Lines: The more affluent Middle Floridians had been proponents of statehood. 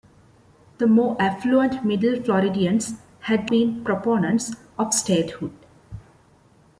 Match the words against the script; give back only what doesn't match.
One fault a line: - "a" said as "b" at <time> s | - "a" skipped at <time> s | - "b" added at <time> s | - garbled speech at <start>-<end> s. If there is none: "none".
none